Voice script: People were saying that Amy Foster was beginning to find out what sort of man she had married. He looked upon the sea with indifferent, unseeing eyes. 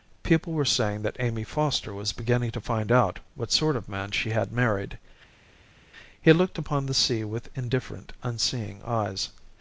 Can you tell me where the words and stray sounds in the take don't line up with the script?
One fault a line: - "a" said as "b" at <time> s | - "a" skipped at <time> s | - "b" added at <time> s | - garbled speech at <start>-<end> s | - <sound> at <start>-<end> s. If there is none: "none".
none